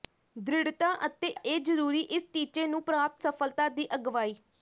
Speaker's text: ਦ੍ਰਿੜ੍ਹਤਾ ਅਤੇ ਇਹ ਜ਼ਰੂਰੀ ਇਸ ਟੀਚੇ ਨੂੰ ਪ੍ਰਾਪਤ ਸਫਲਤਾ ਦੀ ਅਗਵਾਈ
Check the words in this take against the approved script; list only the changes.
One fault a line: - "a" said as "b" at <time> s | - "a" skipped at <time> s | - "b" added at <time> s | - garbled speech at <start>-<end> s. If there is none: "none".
none